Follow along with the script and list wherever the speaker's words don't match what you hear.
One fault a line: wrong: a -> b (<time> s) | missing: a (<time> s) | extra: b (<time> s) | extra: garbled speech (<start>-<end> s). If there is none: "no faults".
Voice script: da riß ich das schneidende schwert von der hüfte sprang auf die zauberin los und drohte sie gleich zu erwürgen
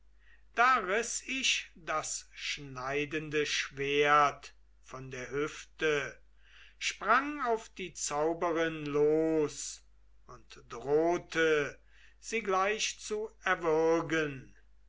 no faults